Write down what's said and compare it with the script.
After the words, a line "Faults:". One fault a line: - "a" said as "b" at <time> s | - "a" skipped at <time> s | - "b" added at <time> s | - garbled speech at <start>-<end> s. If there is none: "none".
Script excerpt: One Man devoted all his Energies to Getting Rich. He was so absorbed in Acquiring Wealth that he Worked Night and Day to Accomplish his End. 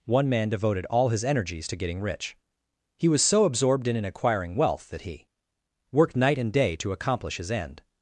One Man devoted all his Energies to Getting Rich. He was so absorbed in in Acquiring Wealth that he Worked Night and Day to Accomplish his End.
Faults:
- "in" added at 4.0 s